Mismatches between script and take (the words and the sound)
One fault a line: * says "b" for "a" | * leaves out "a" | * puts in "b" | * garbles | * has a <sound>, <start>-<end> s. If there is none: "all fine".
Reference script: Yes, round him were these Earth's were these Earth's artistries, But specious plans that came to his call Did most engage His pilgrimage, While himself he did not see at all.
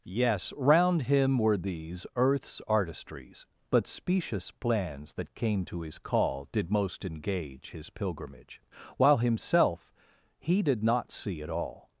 * leaves out "were these Earth's"